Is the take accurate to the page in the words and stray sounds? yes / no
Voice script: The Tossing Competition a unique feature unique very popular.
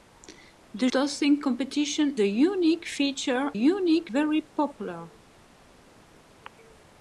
yes